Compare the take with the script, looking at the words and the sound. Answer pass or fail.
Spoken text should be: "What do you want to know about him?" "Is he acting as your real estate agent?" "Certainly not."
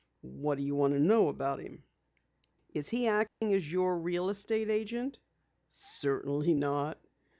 fail